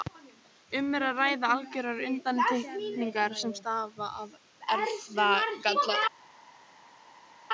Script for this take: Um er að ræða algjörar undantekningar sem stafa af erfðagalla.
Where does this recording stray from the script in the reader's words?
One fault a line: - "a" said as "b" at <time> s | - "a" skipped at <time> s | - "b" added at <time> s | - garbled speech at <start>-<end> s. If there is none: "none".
none